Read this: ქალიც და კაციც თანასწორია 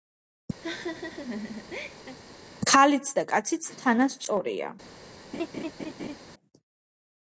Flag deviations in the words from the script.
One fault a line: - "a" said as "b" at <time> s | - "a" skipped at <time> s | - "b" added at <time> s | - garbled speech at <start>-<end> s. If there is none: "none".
none